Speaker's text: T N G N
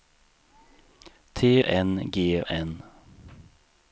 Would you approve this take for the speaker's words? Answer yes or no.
yes